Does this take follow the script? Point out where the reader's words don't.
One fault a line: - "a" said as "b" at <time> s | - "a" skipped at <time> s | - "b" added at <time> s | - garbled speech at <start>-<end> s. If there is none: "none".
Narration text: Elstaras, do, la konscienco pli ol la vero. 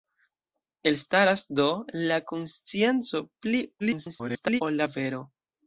- garbled speech at 3.8-4.6 s